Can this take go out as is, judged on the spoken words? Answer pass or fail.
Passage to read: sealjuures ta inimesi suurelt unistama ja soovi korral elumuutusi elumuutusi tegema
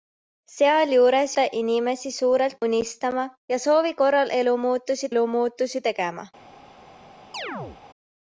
pass